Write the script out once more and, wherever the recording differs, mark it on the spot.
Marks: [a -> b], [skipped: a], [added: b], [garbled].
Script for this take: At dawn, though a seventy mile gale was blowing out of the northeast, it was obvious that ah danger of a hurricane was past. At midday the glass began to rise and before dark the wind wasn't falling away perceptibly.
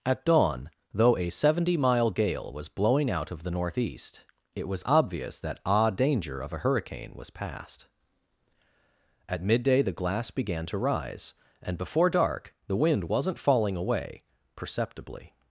At dawn, though a seventy mile gale was blowing out of the northeast, it was obvious that ah danger of a hurricane was past. At midday the glass began to rise and before dark the wind wasn't falling away perceptibly.